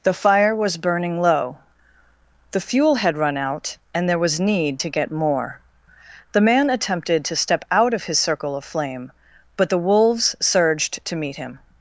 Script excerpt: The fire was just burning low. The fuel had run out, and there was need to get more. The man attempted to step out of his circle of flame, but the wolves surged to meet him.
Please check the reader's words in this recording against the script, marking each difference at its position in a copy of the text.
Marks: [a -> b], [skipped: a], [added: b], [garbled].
The fire was [skipped: just] burning low. The fuel had run out, and there was need to get more. The man attempted to step out of his circle of flame, but the wolves surged to meet him.